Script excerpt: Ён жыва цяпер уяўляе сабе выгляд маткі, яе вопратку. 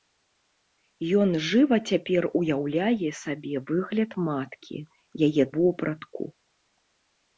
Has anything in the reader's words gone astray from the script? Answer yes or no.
no